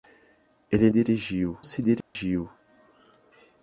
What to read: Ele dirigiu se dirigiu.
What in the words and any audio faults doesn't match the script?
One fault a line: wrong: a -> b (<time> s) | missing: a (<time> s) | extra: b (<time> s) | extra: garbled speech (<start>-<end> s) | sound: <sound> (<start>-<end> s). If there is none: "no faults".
sound: dropout (2.0-2.2 s)